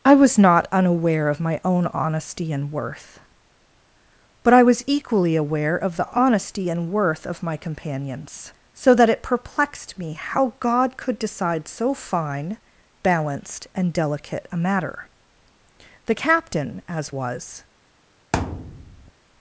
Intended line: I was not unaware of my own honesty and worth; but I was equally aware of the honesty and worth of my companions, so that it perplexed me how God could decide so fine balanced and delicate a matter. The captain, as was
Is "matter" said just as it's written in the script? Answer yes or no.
yes